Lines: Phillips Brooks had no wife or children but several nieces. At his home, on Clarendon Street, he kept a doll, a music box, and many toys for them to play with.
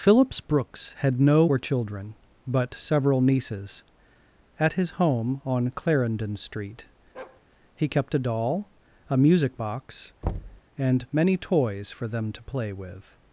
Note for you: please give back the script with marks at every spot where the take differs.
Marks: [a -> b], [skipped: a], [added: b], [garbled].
Phillips Brooks had no [skipped: wife] or children but several nieces. At his home, on Clarendon Street, he kept a doll, a music box, and many toys for them to play with.